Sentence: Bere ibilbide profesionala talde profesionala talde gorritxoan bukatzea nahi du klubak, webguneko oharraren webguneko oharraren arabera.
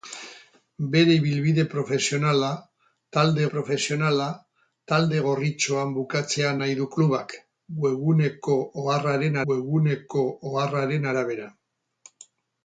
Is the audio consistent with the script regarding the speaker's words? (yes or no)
yes